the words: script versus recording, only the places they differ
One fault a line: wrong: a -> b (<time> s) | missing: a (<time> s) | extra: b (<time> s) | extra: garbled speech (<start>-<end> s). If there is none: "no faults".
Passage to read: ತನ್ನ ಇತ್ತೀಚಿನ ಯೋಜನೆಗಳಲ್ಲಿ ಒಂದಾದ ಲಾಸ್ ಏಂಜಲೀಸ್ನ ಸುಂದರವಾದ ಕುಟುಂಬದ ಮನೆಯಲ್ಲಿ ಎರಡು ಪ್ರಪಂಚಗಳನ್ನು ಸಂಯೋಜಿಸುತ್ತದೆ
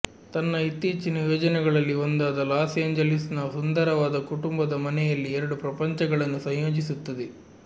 no faults